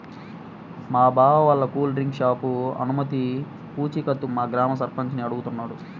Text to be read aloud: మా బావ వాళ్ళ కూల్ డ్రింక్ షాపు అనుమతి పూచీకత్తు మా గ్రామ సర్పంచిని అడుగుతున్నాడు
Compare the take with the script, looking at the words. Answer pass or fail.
pass